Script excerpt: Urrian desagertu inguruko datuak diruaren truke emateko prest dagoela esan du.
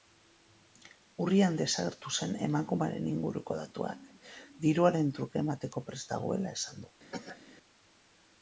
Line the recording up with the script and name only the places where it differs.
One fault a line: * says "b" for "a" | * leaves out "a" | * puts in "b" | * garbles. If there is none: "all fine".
* puts in "zen emakumearen"